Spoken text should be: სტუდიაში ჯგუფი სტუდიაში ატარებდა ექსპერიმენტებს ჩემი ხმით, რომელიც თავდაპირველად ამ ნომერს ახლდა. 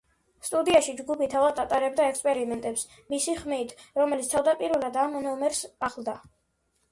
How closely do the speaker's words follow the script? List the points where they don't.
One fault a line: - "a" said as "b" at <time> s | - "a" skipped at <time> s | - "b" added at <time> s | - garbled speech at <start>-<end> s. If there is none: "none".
- "სტუდიაში" said as "თავად" at 1.3 s
- "ჩემი" said as "მისი" at 3.1 s